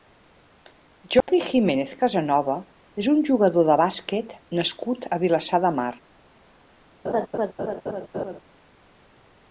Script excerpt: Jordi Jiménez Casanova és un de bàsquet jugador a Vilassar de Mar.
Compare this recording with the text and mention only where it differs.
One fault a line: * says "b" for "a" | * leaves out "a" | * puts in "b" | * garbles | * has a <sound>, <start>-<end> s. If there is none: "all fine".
* has a dropout, 1.2-1.3 s
* puts in "jugador"
* says "nascut" for "jugador"
* has a laugh, 7.0-8.4 s